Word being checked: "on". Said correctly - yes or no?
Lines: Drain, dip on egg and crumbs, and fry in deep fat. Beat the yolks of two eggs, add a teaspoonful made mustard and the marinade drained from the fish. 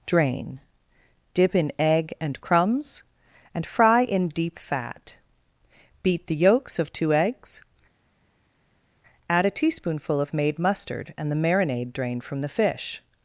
no